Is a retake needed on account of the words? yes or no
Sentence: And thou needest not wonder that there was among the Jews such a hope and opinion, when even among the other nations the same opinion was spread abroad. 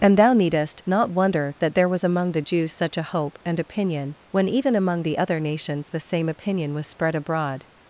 no